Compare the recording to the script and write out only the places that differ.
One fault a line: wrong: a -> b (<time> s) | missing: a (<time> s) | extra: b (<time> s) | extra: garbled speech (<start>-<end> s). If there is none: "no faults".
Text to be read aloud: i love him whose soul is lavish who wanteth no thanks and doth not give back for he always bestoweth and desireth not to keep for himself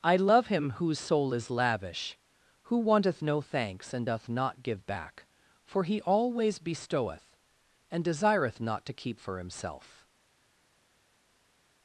no faults